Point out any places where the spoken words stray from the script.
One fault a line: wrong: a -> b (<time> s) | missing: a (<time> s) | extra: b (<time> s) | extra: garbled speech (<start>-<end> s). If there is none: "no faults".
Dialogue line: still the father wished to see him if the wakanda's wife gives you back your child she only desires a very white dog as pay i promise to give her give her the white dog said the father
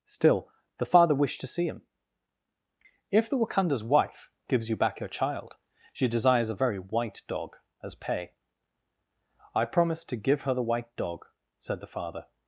missing: only (6.1 s)
missing: give her (10.5 s)